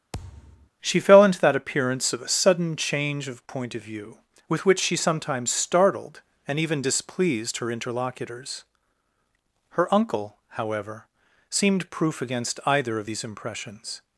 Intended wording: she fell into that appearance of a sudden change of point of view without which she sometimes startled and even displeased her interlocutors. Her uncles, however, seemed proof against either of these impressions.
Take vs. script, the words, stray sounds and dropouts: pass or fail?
fail